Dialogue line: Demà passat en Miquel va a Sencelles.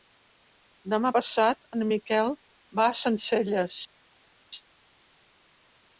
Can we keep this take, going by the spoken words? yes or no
yes